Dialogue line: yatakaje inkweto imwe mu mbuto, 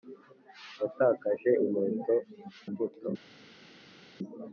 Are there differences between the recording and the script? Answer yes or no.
yes